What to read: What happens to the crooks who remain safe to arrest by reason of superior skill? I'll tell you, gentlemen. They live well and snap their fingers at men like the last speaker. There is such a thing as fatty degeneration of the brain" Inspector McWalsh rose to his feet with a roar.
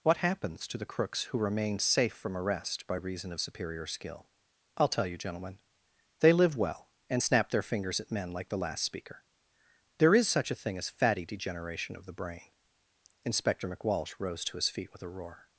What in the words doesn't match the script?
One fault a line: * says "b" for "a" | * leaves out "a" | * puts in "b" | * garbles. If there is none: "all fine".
* says "from" for "to"